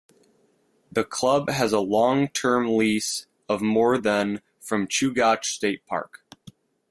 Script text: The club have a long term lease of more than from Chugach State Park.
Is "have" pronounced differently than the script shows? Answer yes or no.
yes